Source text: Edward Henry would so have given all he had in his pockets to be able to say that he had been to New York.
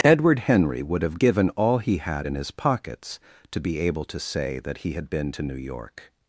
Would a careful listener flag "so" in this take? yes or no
yes